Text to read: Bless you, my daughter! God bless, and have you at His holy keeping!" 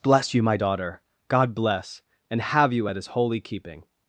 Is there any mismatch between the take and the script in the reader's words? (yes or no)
no